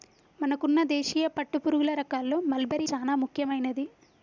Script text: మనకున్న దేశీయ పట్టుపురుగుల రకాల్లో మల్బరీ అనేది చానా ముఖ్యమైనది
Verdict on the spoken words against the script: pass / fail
fail